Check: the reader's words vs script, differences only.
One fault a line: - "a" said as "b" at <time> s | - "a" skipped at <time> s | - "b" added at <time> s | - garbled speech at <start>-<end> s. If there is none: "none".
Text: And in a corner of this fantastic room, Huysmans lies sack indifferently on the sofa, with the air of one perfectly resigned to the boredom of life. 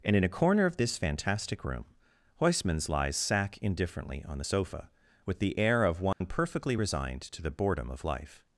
none